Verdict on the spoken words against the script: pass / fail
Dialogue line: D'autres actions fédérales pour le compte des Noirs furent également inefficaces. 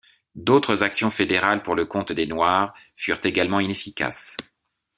pass